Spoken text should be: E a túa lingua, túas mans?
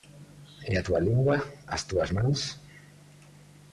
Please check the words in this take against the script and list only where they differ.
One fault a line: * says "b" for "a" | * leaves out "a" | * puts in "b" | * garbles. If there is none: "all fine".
* puts in "as"